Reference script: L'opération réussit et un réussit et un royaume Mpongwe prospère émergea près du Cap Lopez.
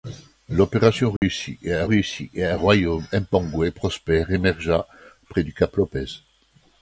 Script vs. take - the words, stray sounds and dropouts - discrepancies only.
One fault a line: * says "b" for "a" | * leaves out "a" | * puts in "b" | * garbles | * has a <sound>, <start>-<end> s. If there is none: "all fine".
* has a dropout, 1.2-1.2 s